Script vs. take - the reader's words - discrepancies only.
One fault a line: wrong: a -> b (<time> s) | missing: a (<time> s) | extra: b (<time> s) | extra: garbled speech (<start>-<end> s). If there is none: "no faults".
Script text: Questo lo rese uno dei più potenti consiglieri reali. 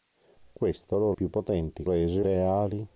missing: rese uno dei (1.1 s)
wrong: consiglieri -> rese (1.8 s)